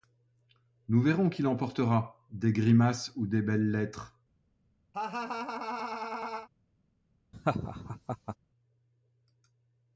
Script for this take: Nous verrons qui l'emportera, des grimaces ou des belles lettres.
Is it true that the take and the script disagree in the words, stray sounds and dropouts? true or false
true